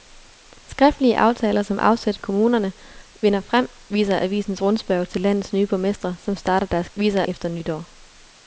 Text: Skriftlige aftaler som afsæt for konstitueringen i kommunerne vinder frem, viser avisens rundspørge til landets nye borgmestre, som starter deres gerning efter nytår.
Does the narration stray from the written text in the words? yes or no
yes